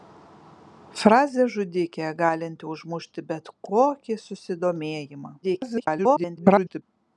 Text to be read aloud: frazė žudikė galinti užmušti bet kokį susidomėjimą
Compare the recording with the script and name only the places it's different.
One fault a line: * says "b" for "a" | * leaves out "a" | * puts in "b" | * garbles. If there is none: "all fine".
* garbles